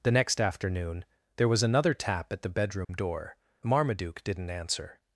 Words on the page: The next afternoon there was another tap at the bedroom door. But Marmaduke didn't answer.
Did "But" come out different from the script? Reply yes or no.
yes